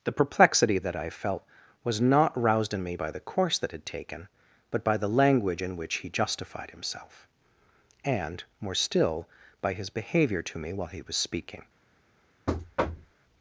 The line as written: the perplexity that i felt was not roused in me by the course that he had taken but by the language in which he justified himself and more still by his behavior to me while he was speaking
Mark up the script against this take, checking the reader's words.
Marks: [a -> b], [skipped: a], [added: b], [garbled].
the perplexity that i felt was not roused in me by the course that [skipped: he] had taken but by the language in which he justified himself and more still by his behavior to me while he was speaking